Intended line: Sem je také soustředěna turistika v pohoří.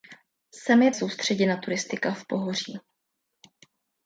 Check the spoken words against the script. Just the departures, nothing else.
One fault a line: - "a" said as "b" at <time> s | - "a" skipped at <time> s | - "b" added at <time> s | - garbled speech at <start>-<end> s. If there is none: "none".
- "také" skipped at 0.9 s